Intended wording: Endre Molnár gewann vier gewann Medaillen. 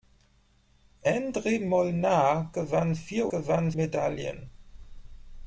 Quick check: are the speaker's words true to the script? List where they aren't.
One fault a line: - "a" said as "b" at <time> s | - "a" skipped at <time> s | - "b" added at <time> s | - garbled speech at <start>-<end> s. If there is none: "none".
none